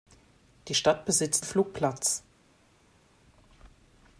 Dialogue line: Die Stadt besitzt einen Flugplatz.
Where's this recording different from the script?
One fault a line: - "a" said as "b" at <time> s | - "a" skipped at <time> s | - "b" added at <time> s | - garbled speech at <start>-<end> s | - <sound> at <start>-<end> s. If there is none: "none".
- "einen" skipped at 1.5 s